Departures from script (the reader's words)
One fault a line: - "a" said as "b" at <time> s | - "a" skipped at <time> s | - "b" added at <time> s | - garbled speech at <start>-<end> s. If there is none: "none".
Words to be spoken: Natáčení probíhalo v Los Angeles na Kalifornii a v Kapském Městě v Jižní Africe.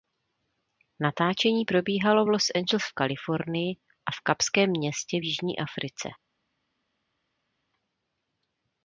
- "na" said as "v" at 2.8 s